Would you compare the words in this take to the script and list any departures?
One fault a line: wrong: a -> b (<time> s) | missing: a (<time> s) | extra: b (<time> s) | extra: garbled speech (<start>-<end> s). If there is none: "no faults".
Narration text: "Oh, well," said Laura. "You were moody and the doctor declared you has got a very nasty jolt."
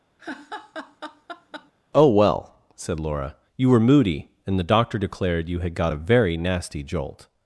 wrong: has -> had (5.6 s)